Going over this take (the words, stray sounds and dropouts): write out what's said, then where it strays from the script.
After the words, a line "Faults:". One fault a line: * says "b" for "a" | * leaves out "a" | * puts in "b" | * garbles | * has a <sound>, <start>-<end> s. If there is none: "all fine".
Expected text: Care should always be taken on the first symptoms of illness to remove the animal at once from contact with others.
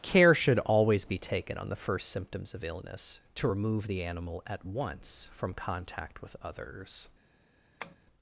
Care should always be taken on the first symptoms of illness to remove the animal at once from contact with others.
Faults:
* has a tap, 7.8-8.0 s